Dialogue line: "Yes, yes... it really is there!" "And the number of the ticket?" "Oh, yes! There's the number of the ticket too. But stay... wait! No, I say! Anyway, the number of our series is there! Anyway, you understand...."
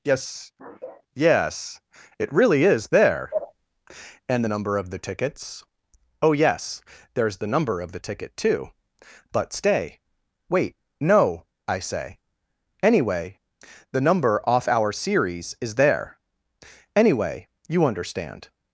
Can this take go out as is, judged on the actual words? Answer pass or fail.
fail